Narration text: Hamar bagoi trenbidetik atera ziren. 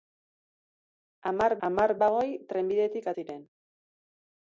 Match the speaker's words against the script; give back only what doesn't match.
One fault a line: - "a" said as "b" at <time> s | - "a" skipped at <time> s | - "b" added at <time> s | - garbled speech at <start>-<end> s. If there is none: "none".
- "hamar" added at 1.7 s
- "atera" skipped at 3.1 s